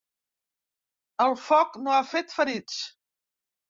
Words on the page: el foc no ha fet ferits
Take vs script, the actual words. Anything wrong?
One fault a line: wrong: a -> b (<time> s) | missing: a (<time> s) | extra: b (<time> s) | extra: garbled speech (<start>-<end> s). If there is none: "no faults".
no faults